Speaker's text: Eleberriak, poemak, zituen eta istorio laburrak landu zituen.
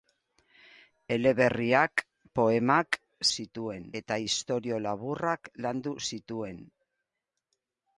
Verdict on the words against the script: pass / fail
pass